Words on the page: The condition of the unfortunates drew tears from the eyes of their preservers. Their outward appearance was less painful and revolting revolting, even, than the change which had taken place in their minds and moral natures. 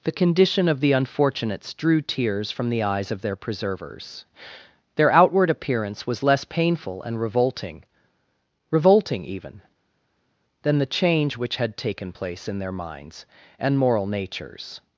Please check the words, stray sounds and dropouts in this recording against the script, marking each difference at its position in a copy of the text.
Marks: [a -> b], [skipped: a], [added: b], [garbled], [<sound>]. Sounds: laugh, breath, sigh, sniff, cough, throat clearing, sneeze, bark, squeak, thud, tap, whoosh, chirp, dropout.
The condition of the unfortunates drew tears from the eyes of their preservers. Their outward appearance was less painful and revolting revolting, even, than the change which had taken place in their minds and moral natures.